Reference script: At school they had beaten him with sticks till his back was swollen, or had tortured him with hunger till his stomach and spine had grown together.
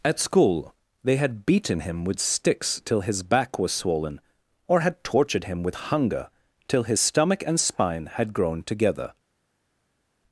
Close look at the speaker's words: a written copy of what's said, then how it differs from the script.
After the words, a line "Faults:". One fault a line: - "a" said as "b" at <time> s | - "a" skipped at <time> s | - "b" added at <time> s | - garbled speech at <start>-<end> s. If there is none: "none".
At school they had beaten him with sticks till his back was swollen, or had tortured him with hunger till his stomach and spine had grown together.
Faults:
none